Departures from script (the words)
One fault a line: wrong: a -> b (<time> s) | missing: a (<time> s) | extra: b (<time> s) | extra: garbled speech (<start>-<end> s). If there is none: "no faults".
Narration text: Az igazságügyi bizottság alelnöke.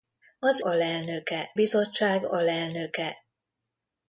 wrong: igazságügyi -> alelnöke (0.6 s)